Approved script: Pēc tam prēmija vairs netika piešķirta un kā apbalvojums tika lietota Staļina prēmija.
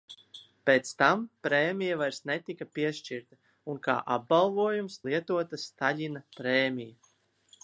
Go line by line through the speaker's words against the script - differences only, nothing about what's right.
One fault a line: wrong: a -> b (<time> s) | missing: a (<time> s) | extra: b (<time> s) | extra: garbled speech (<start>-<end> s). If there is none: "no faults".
missing: tika (5.0 s)